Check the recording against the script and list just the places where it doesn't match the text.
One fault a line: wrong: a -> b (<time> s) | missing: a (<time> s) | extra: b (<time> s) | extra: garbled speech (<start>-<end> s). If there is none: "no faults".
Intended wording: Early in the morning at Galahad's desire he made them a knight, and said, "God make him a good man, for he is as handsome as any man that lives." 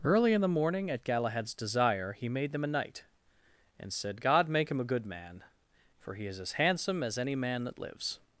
no faults